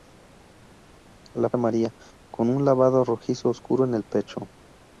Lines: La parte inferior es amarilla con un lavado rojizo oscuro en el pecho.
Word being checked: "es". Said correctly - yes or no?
no